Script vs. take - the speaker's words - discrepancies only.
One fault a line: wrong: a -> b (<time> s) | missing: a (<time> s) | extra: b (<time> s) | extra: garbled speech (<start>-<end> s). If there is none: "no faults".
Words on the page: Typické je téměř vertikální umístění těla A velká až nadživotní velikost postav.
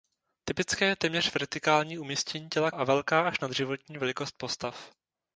no faults